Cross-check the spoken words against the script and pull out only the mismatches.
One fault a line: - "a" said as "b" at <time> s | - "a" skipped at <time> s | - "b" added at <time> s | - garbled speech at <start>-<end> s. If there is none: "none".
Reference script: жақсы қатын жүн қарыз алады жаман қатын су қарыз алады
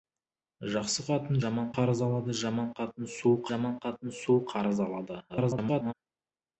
- "жүн" said as "жаман" at 1.4 s
- "жаман қатын су" added at 3.5 s
- garbled speech at 5.3-5.9 s